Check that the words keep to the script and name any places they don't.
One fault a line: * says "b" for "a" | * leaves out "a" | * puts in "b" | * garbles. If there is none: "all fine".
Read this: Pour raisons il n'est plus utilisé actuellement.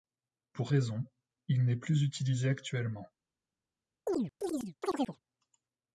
all fine